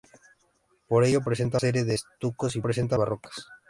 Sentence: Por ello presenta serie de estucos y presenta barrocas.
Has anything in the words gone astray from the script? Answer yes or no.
no